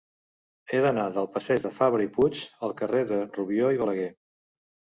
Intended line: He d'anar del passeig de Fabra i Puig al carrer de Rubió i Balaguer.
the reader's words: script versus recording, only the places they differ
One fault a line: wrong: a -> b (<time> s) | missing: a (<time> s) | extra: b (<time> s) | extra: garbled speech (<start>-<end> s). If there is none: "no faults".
no faults